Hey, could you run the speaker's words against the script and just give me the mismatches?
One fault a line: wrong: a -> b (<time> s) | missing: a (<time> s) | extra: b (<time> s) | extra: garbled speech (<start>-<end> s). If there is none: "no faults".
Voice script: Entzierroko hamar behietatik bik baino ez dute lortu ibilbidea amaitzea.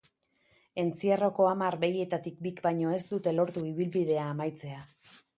no faults